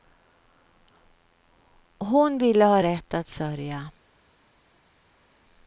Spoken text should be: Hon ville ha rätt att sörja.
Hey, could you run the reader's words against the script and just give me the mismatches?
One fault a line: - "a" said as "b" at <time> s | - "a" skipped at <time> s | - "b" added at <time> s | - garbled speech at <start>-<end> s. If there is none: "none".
none